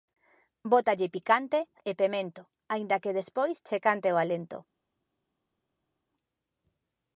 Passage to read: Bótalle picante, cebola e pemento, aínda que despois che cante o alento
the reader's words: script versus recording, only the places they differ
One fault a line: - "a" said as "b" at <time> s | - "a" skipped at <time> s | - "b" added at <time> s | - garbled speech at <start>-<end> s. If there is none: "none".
- "cebola" skipped at 1.6 s